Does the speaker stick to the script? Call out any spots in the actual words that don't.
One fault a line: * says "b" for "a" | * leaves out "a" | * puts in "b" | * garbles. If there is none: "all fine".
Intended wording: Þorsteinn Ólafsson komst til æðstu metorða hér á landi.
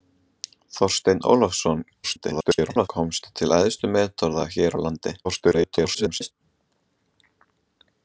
* garbles
* garbles